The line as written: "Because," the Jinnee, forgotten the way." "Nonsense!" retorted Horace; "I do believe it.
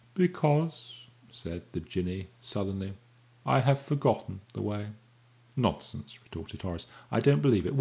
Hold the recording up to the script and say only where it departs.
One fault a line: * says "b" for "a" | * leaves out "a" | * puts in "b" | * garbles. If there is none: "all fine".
* puts in "said"
* puts in "sullenly I have"
* says "don't" for "do"